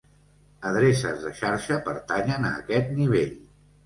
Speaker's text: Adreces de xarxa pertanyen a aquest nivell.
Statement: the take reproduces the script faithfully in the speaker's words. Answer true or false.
true